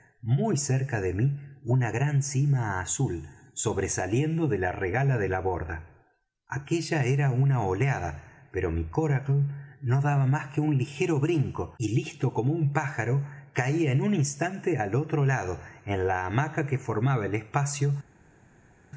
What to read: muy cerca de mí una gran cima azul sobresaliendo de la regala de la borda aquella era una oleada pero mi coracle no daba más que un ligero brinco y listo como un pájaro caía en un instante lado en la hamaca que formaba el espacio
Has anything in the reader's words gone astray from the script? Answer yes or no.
yes